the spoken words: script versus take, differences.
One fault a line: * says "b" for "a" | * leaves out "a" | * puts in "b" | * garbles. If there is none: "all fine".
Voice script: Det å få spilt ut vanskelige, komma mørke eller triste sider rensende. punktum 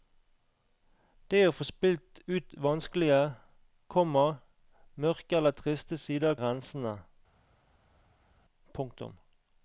all fine